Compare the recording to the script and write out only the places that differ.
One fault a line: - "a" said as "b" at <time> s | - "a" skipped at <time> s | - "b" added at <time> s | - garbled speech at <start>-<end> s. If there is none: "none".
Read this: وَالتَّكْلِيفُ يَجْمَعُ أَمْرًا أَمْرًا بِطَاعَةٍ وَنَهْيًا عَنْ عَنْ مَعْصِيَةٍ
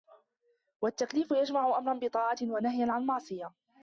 - "أَمْرًا" skipped at 2.0 s
- "عَنْ" skipped at 3.1 s